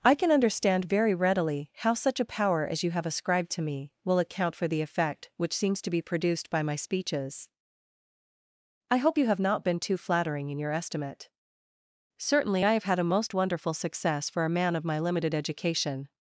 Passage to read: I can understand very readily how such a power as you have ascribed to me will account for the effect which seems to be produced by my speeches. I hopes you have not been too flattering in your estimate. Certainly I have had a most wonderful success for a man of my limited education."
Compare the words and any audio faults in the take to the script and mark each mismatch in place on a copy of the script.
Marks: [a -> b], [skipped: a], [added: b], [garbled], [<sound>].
I can understand very readily how such a power as you have ascribed to me will account for the effect which seems to be produced by my speeches. I [hopes -> hope] you have not been too flattering in your estimate. Certainly I have had a most wonderful success for a man of my limited education."